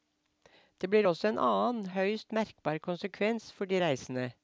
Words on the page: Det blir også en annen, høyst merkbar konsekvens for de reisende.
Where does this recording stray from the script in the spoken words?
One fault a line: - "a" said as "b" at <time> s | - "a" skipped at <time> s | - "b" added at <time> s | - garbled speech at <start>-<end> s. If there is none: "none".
none